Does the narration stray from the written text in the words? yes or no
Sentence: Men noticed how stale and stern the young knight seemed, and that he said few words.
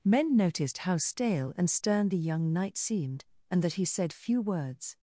no